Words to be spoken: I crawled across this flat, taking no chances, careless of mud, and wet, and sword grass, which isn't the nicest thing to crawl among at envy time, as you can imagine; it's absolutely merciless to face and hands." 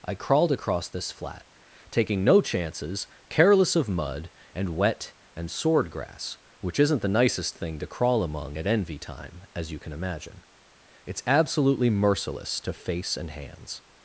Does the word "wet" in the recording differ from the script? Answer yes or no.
no